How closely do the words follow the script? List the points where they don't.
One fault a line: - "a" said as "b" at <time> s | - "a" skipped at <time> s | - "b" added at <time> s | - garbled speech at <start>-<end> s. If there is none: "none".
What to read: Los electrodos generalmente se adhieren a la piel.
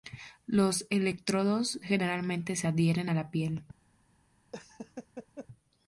none